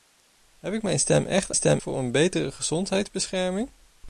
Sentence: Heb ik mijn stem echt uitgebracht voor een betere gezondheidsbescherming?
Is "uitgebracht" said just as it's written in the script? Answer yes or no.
no